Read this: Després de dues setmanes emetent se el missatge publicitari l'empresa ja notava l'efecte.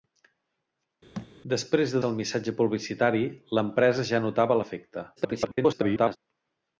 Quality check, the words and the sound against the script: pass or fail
fail